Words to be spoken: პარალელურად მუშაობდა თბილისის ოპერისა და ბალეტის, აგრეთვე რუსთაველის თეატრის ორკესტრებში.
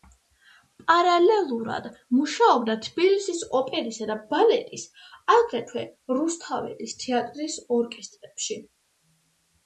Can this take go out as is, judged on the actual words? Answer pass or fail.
pass